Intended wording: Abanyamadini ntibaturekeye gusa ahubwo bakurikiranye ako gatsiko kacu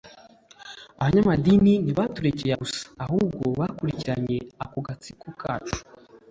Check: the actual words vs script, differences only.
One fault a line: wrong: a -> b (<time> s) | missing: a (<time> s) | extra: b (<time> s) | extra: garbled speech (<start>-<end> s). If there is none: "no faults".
no faults